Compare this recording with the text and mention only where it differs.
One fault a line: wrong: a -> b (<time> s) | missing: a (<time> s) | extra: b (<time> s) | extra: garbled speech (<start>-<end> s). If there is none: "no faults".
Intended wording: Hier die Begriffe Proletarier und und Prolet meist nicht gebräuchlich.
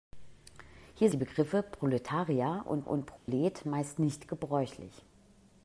no faults